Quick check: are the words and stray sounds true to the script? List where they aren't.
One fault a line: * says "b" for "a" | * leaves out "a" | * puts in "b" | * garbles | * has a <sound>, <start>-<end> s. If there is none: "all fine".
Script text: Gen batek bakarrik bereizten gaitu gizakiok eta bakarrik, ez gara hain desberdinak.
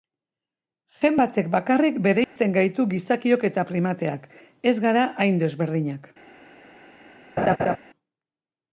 * has a dropout, 2.2-2.4 s
* says "primateak" for "bakarrik"
* has a laugh, 7.4-7.8 s